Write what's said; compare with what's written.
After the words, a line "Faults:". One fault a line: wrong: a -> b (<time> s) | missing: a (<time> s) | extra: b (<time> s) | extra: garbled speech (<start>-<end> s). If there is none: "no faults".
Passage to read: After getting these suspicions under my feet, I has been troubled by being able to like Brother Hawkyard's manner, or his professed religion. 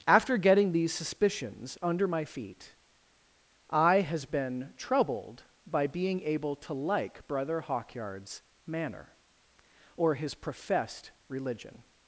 After getting these suspicions under my feet, I has been troubled by being able to like Brother Hawkyard's manner, or his professed religion.
Faults:
no faults